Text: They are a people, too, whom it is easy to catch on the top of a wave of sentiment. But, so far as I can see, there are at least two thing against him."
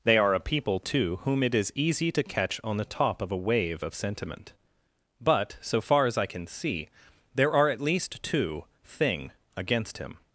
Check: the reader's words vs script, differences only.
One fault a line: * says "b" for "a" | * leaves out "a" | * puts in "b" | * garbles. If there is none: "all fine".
all fine